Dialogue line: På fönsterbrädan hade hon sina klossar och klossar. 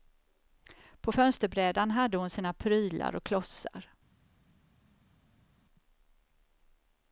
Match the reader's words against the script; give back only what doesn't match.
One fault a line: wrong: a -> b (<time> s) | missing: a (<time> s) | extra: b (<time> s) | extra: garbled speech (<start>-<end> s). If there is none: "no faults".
wrong: klossar -> prylar (2.5 s)